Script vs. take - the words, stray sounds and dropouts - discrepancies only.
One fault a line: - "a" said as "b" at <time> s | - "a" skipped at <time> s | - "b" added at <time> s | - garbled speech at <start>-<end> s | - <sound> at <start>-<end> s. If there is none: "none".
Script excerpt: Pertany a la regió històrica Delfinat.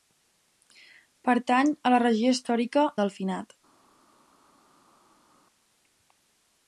none